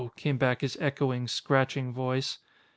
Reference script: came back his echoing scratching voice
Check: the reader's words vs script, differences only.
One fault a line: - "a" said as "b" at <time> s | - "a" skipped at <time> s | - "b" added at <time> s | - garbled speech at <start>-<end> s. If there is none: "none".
none